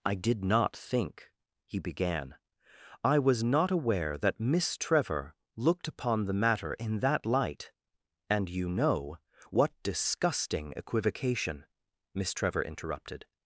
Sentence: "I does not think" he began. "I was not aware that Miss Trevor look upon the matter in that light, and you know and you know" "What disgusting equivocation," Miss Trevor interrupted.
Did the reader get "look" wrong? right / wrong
wrong